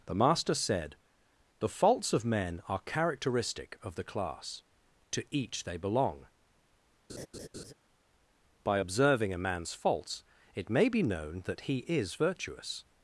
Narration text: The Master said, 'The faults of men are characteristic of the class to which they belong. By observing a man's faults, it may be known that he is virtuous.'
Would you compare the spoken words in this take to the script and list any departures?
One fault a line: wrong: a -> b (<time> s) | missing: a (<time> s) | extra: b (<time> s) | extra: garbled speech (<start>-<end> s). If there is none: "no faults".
wrong: which -> each (5.3 s)